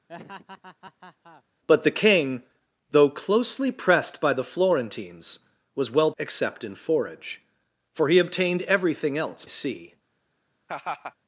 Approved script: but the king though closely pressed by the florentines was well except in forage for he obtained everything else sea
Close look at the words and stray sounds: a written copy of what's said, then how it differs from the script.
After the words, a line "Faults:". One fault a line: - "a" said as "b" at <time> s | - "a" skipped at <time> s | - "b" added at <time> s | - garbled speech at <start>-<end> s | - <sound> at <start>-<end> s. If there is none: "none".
but the king though closely pressed by the florentines was well except in forage for he obtained everything else sea
Faults:
- laugh at 0.1-1.4 s
- laugh at 10.7-11.1 s